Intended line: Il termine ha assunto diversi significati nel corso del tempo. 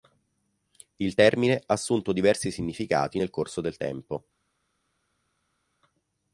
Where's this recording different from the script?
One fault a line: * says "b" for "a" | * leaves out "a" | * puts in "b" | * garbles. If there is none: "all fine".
all fine